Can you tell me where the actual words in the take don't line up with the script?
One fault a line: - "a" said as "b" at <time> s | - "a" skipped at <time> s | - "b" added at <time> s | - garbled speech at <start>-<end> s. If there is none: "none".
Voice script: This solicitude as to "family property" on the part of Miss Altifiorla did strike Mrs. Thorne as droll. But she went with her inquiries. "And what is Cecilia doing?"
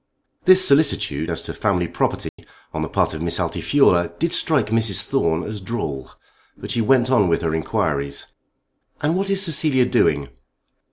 - "on" added at 7.1 s